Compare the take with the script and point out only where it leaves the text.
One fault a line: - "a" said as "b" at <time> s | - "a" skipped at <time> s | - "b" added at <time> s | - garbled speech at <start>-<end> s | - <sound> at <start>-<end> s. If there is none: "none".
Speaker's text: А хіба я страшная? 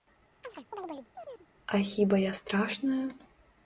- chirp at 0.4-1.5 s